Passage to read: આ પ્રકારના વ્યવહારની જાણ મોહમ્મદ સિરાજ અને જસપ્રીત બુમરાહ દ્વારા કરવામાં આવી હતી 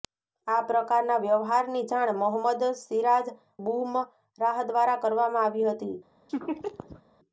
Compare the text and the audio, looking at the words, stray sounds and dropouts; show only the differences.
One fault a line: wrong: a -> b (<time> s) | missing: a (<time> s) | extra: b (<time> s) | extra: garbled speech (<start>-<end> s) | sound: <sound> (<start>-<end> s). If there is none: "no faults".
missing: અને જસપ્રીત (3.3 s)
sound: laugh (6.3-7.0 s)